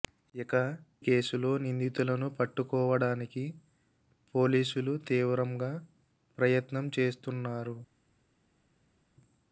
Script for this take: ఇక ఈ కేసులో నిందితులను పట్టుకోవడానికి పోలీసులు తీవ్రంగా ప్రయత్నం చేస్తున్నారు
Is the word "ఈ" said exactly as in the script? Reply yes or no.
no